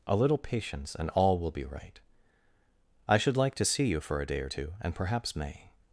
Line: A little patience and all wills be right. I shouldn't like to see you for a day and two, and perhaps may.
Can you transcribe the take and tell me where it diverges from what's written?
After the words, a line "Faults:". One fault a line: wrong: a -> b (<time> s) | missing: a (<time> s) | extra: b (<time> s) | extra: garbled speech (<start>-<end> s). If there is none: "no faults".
A little patience and all will be right. I should like to see you for a day or two, and perhaps may.
Faults:
wrong: wills -> will (1.4 s)
wrong: shouldn't -> should (3.2 s)
wrong: and -> or (4.4 s)